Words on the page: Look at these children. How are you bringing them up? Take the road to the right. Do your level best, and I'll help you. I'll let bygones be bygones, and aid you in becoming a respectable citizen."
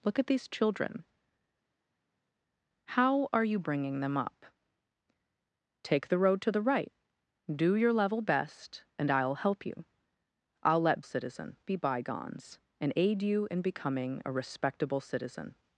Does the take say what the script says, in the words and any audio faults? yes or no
no